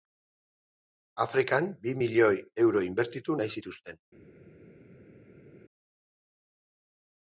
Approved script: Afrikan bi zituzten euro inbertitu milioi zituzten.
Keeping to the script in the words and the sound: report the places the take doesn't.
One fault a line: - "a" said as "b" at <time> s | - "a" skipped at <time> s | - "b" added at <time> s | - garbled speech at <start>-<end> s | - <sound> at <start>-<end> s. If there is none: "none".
- "zituzten" said as "milioi" at 2.0 s
- "milioi" said as "nahi" at 3.4 s